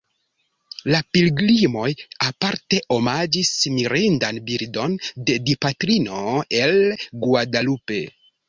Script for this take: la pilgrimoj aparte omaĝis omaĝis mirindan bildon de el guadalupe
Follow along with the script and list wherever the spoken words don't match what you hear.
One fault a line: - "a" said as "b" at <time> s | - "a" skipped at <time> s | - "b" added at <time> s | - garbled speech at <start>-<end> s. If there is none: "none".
- "omaĝis" skipped at 3.5 s
- "dipatrino" added at 5.5 s